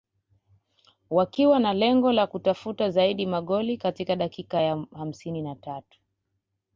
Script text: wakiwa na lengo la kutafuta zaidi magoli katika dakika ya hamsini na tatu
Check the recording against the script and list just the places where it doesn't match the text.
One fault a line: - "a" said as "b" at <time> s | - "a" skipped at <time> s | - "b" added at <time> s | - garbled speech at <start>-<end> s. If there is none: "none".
none